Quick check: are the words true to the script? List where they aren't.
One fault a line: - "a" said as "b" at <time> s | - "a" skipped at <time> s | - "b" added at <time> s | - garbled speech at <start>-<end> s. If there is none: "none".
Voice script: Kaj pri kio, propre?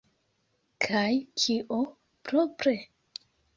- "pri" skipped at 1.1 s